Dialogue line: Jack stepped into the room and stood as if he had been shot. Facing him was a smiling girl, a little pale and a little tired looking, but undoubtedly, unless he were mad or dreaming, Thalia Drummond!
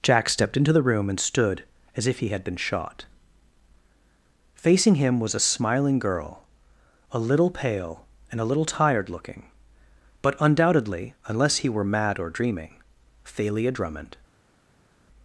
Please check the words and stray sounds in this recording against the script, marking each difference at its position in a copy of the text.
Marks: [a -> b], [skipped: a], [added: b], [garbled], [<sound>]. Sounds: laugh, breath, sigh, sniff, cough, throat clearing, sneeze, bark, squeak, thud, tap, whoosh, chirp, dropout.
Jack stepped into the room and stood as if he had been shot. Facing him was a smiling girl, a little pale and a little tired looking, but undoubtedly, unless he were mad or dreaming, Thalia Drummond!